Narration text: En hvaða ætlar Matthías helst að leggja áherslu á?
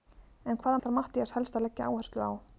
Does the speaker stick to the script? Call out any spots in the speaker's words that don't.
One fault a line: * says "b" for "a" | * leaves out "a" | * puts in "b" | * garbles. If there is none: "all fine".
all fine